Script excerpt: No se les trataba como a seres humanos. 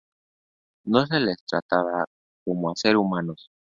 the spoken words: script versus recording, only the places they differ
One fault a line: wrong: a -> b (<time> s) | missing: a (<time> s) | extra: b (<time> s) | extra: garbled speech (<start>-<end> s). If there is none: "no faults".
no faults